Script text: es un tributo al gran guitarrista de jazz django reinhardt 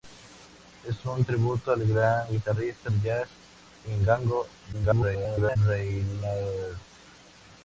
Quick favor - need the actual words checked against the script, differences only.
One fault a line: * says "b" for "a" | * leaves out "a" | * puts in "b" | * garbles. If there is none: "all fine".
* garbles